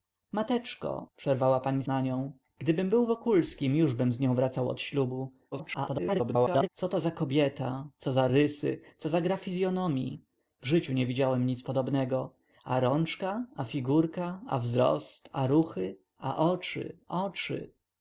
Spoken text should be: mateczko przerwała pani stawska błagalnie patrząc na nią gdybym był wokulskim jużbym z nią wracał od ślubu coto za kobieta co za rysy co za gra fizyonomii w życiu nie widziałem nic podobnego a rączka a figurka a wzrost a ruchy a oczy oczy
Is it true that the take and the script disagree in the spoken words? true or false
true